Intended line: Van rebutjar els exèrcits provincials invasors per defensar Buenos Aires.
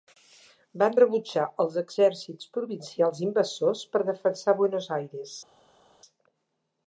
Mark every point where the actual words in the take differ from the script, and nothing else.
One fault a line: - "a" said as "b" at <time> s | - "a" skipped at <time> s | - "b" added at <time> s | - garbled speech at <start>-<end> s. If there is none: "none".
none